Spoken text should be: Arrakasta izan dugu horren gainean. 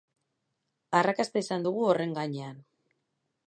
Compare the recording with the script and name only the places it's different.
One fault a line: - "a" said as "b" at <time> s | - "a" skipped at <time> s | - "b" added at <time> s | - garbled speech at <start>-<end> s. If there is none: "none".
none